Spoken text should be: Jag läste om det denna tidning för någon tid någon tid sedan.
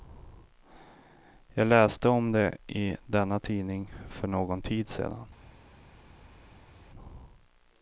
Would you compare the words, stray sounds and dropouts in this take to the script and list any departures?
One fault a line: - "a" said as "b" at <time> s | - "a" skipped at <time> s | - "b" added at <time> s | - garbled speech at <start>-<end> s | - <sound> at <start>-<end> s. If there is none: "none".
- "i" added at 2.7 s
- "någon tid" skipped at 4.9 s